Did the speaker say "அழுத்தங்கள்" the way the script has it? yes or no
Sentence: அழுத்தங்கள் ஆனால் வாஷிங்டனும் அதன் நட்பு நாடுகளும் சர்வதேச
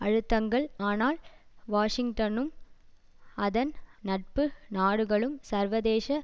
yes